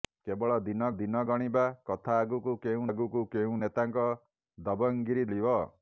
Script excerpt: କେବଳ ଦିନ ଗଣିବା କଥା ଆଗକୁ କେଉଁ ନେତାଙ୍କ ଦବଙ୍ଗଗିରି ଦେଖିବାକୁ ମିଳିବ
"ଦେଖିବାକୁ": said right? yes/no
no